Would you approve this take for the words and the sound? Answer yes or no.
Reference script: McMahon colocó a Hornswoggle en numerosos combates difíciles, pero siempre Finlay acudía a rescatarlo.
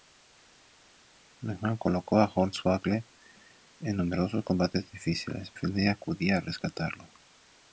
no